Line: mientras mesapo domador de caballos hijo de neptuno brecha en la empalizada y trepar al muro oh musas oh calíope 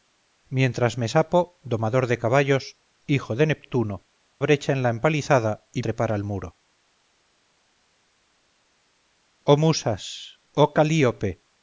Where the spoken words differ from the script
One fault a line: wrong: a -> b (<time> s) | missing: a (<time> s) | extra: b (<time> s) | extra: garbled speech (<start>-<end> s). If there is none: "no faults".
no faults